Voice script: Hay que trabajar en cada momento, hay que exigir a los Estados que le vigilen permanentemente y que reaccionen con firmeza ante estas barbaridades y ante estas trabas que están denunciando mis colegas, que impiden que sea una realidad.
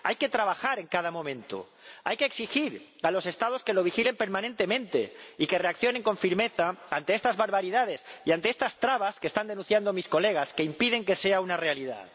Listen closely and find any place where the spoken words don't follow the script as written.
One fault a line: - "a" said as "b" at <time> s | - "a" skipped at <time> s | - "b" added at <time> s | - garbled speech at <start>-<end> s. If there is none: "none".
- "le" said as "lo" at 3.7 s